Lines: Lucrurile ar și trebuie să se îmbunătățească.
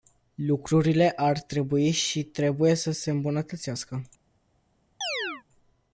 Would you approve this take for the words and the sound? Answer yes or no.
no